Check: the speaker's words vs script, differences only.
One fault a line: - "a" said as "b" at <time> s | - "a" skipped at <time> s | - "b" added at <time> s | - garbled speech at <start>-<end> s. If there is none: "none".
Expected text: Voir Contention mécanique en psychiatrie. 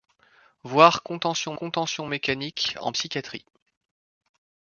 - "Contention" added at 1.5 s